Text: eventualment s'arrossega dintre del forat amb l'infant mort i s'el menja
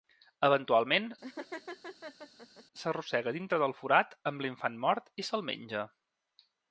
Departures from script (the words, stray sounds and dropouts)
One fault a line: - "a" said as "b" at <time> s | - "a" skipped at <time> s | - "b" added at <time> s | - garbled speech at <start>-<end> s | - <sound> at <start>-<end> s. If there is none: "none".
- laugh at 1.2-2.6 s